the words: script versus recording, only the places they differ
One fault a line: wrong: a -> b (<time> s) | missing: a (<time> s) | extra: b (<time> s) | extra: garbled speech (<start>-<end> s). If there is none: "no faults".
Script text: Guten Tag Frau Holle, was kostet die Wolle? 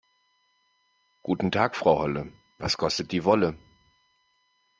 no faults